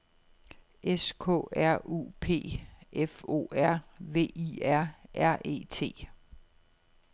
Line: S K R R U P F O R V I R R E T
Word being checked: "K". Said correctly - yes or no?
yes